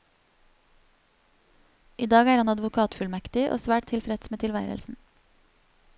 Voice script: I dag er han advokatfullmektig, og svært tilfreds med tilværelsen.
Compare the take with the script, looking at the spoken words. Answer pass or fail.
pass